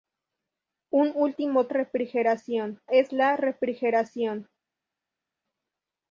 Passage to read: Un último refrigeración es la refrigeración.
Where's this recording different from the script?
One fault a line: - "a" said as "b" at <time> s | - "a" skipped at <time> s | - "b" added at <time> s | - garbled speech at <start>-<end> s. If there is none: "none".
none